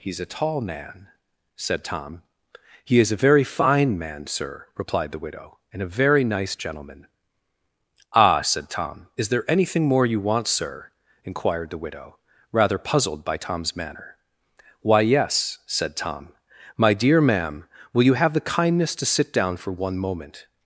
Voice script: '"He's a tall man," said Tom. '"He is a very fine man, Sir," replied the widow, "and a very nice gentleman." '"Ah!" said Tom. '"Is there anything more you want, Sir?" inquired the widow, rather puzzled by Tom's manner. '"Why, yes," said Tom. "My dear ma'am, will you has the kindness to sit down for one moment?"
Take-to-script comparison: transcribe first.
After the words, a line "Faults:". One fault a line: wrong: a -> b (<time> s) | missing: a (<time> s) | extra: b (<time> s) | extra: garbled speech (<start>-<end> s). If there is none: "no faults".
'"He's a tall man," said Tom. '"He is a very fine man, Sir," replied the widow, "and a very nice gentleman." '"Ah!" said Tom. '"Is there anything more you want, Sir?" inquired the widow, rather puzzled by Tom's manner. '"Why, yes," said Tom. "My dear ma'am, will you have the kindness to sit down for one moment?"
Faults:
wrong: has -> have (18.1 s)